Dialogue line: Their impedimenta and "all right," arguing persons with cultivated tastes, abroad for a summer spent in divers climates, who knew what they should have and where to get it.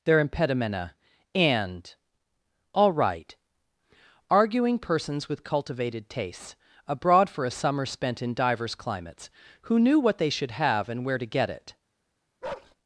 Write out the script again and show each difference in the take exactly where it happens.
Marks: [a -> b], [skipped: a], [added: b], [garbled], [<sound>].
Their impedimenta and "all right," arguing persons with cultivated tastes, abroad for a summer spent in divers climates, who knew what they should have and where to get it. [bark]